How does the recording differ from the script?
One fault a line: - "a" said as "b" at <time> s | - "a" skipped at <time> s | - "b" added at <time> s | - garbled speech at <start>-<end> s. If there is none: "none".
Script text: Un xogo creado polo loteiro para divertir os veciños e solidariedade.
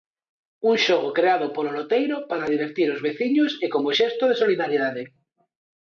- "como xesto de" added at 3.7 s